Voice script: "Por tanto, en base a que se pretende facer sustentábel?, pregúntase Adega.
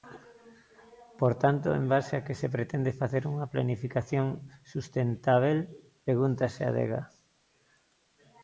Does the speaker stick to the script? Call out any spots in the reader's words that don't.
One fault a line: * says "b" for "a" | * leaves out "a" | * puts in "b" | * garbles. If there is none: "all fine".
* puts in "unha planificación"